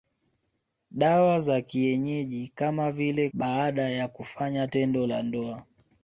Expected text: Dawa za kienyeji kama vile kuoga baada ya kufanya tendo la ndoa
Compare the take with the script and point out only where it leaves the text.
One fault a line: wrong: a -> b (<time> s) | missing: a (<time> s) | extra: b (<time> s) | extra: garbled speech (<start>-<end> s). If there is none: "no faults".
missing: kuoga (3.3 s)